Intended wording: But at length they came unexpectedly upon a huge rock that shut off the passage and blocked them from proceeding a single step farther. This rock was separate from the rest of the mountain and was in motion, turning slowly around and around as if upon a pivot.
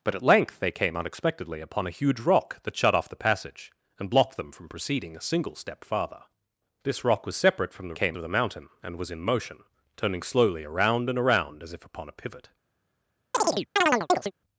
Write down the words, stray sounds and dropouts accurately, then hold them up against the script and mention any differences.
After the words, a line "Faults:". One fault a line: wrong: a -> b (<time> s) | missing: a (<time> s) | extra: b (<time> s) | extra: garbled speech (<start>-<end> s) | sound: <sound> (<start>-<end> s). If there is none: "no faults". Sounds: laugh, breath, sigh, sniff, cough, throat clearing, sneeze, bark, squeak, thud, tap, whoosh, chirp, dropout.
But at length they came unexpectedly upon a huge rock that shut off the passage and blocked them from proceeding a single step farther. This rock was separate from the came of the mountain and was in motion, turning slowly around and around as if upon a pivot.
Faults:
wrong: rest -> came (7.9 s)
sound: chirp (13.3-14.3 s)